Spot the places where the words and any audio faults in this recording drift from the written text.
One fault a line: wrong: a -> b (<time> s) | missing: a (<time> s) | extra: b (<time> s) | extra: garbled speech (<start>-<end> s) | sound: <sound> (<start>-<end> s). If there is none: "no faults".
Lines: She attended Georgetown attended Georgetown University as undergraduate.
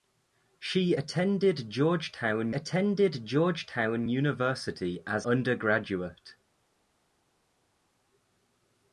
no faults